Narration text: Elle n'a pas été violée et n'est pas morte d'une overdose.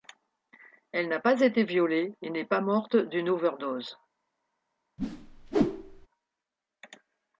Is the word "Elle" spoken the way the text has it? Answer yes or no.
yes